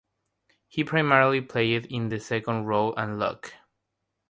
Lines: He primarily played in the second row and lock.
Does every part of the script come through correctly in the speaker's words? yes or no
yes